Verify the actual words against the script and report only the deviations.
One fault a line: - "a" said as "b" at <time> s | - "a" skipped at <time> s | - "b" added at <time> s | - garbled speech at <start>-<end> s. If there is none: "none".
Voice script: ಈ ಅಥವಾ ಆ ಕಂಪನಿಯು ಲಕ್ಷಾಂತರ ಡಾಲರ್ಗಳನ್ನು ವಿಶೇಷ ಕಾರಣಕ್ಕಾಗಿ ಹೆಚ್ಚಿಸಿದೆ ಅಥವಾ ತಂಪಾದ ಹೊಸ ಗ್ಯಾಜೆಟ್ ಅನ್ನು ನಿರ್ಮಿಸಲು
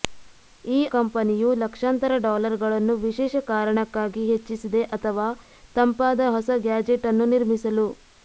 - "ಅಥವಾ ಆ" skipped at 0.9 s